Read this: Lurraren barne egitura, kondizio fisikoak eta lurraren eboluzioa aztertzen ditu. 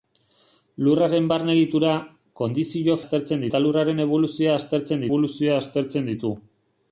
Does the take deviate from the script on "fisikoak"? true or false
true